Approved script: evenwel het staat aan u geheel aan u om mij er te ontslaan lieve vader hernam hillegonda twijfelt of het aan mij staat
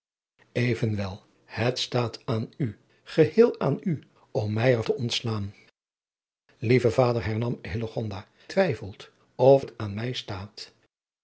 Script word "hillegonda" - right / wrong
right